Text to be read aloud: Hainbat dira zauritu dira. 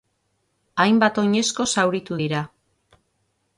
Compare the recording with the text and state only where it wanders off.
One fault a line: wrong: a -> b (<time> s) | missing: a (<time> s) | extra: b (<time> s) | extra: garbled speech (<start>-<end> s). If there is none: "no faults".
wrong: dira -> oinezko (1.2 s)